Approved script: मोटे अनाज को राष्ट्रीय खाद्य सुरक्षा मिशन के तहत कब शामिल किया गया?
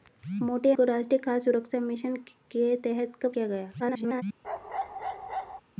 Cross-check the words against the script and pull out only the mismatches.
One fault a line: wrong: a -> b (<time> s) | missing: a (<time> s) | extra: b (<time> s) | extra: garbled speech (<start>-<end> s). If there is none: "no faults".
missing: अनाज (0.7 s)
missing: शामिल (3.3 s)
extra: garbled speech (3.8-4.2 s)